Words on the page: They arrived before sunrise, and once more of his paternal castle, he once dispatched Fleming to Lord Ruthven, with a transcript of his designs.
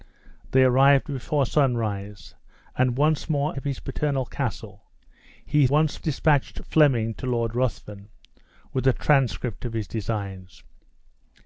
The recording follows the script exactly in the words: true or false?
true